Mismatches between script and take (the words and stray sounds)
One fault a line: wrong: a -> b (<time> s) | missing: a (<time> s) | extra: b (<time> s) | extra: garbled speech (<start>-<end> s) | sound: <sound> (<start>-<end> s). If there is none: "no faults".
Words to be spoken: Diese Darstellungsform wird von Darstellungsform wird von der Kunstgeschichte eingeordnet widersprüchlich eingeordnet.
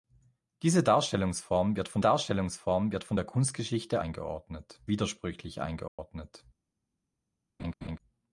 sound: dropout (5.9-6.0 s)
sound: laugh (7.6-8.0 s)